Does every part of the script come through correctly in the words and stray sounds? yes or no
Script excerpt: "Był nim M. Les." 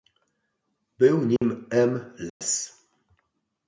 no